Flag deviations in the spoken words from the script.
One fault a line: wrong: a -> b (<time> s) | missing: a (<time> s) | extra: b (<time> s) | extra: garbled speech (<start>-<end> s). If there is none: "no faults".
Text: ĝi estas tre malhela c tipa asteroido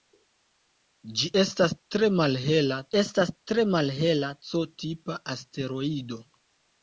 extra: estas tre malhela (3.0 s)